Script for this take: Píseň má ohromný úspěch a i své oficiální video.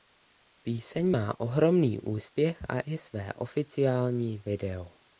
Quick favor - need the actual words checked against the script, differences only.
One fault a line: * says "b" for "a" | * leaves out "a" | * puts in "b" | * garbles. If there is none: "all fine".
all fine